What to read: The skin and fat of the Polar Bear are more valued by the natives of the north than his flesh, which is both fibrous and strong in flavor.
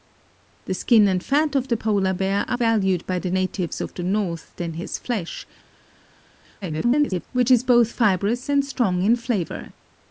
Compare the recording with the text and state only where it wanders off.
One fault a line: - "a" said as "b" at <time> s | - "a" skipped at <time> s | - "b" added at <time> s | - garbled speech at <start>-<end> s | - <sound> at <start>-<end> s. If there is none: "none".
- "more" skipped at 2.6 s
- garbled speech at 6.6-7.2 s